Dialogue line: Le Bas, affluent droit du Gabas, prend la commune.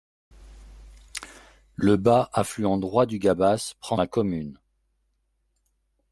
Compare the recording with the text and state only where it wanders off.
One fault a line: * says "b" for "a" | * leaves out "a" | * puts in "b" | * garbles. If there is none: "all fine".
all fine